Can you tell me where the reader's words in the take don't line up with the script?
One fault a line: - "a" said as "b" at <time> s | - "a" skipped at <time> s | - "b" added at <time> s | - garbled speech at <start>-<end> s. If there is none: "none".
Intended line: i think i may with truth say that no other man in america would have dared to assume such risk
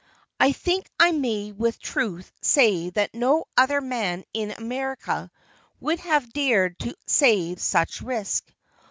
- "assume" said as "say" at 7.1 s